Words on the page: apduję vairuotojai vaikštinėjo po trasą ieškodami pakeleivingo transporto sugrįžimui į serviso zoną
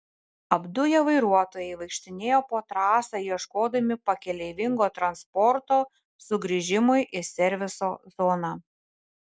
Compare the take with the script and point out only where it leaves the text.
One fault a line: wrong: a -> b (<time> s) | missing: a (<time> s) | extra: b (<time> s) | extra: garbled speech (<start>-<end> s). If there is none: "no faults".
no faults